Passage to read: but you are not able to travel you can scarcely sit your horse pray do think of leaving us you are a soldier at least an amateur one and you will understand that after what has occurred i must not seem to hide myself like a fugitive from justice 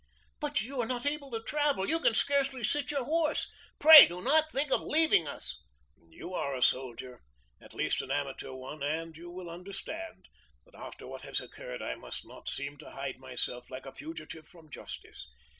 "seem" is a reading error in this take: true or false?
false